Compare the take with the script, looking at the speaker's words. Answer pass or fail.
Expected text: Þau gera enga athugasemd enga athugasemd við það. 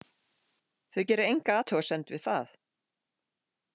fail